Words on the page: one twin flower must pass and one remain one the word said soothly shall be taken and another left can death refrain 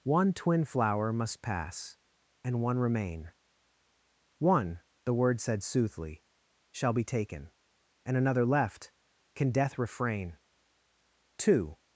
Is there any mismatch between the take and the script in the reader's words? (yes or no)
yes